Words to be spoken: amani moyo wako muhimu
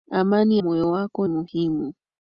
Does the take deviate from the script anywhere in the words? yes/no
no